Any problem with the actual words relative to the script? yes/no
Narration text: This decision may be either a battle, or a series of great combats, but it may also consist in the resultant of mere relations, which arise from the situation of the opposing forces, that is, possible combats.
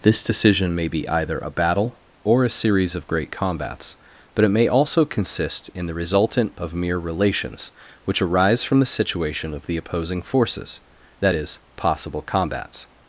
no